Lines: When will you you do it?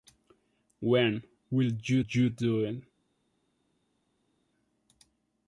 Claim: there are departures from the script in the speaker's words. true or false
false